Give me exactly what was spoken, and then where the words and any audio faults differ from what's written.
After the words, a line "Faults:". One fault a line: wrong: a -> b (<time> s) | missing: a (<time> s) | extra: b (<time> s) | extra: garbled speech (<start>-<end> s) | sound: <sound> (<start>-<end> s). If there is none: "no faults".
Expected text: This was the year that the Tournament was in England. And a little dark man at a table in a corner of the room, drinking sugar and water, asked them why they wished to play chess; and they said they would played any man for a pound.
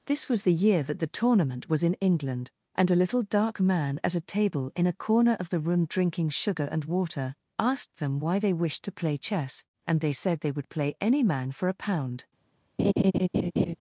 This was the year that the Tournament was in England. And a little dark man at a table in a corner of the room, drinking sugar and water, asked them why they wished to play chess; and they said they would play any man for a pound.
Faults:
wrong: played -> play (10.7 s)
sound: laugh (12.8-13.8 s)